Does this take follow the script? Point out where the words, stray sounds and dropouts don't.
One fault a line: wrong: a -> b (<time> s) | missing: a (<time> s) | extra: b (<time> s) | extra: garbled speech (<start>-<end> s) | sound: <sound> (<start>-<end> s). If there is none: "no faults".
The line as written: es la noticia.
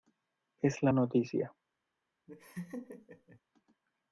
sound: laugh (2.3-3.4 s)